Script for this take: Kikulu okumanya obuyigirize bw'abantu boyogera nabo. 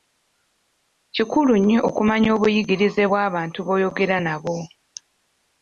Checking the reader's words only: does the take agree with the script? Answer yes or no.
no